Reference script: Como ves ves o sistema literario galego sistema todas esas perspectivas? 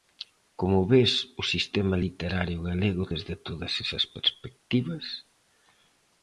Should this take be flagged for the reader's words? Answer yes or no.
yes